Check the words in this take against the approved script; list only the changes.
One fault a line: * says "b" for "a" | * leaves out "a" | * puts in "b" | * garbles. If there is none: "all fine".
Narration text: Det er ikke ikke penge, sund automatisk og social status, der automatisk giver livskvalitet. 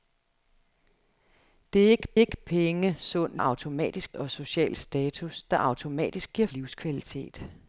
all fine